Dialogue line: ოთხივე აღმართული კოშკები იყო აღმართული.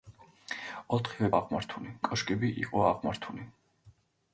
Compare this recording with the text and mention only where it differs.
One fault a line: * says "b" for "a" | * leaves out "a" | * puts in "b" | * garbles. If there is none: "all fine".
all fine